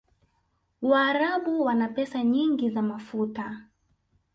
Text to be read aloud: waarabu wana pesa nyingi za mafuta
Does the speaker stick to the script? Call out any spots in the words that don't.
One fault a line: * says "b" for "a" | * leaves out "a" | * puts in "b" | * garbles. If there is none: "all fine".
all fine